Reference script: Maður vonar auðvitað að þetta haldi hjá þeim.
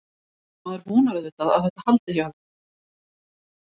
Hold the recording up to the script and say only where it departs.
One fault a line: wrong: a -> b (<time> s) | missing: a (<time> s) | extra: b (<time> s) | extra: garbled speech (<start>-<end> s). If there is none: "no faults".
no faults